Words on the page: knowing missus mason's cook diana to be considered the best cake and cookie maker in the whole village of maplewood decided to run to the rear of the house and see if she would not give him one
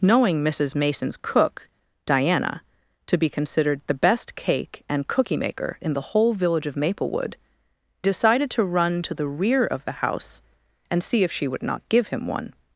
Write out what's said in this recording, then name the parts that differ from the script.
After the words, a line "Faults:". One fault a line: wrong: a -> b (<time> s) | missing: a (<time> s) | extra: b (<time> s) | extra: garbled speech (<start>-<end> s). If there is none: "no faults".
knowing missus mason's cook diana to be considered the best cake and cookie maker in the whole village of maplewood decided to run to the rear of the house and see if she would not give him one
Faults:
no faults